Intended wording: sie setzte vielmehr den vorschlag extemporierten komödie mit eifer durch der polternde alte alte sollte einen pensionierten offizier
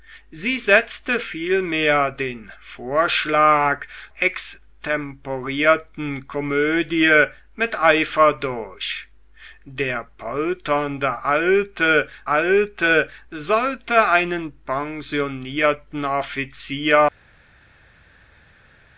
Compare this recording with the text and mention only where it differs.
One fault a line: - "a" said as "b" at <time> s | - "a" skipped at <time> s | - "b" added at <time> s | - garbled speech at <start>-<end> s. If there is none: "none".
none